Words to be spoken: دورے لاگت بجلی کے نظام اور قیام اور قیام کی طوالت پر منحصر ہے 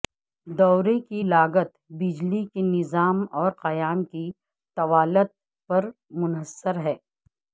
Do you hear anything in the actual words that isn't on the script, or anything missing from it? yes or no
yes